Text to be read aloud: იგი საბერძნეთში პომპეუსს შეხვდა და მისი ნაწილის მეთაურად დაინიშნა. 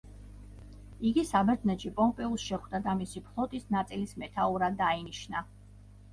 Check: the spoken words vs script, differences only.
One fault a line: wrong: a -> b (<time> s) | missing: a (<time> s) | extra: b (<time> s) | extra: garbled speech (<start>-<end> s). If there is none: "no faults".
extra: ფლოტის (3.3 s)